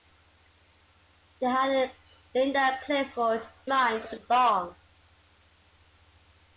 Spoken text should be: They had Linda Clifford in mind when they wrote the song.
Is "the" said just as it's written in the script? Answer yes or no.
no